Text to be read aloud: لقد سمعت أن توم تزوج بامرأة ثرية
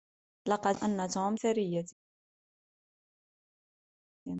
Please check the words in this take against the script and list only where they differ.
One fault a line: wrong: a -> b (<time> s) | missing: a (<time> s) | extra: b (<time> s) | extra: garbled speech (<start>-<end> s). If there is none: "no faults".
missing: سمعت (0.8 s)
missing: تزوج بامرأة (1.4 s)